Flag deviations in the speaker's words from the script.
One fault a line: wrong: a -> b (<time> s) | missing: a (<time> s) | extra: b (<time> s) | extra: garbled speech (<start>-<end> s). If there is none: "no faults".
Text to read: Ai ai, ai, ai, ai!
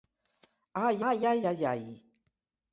no faults